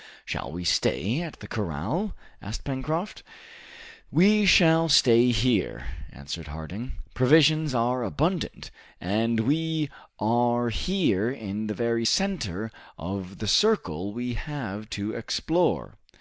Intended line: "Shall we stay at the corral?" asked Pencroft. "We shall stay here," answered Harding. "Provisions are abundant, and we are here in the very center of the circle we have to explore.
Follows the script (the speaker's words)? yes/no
yes